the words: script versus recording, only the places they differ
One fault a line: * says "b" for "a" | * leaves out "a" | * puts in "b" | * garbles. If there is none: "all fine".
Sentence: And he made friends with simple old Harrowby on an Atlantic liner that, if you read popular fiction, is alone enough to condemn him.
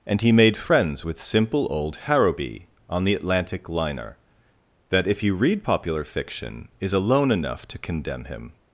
* says "the" for "an"